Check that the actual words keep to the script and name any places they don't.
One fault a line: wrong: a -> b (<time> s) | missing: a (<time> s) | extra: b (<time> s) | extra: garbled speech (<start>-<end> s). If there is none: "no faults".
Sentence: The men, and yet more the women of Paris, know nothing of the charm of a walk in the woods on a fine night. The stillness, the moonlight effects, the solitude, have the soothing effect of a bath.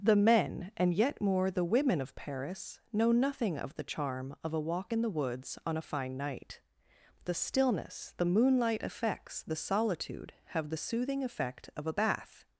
no faults